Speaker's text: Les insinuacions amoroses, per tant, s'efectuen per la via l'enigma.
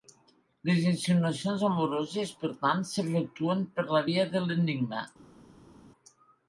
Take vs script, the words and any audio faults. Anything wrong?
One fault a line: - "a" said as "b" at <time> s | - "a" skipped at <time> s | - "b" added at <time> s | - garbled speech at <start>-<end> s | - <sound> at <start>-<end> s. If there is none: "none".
- "de" added at 4.4 s